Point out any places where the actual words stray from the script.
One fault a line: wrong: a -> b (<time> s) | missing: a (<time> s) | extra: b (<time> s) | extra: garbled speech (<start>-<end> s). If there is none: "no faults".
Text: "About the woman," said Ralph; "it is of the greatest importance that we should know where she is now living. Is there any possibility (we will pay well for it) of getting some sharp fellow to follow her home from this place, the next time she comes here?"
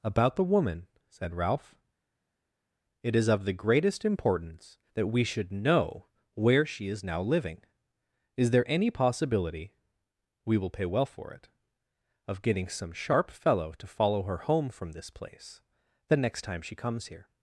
no faults